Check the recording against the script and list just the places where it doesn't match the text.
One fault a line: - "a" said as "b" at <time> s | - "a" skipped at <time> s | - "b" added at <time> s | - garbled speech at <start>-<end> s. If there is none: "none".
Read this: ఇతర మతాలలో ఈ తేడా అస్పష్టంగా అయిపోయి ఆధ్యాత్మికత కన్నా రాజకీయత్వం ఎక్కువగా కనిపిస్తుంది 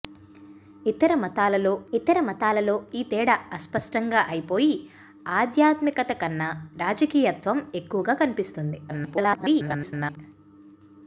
- "ఇతర మతాలలో" added at 1.9 s
- garbled speech at 8.9-10.2 s